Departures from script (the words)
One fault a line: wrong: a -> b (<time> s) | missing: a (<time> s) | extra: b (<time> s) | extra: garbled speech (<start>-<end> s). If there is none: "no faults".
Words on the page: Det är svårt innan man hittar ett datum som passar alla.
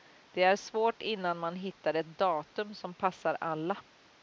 no faults